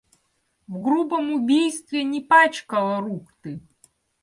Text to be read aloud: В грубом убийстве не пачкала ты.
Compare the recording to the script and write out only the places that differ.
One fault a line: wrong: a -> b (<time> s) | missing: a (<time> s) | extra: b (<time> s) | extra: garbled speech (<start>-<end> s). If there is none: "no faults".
extra: рук (3.0 s)